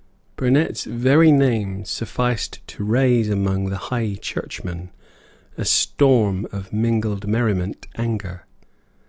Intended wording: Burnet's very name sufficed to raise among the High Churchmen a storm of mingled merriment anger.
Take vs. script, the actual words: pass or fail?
pass